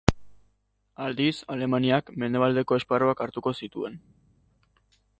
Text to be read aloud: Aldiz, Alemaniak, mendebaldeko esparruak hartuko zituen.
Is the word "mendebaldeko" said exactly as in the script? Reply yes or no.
yes